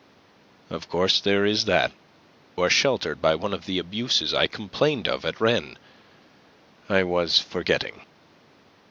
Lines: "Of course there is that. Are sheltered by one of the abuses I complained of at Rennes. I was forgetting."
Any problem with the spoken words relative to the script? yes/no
no